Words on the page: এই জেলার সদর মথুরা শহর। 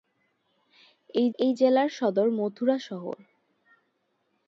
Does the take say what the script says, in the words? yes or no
no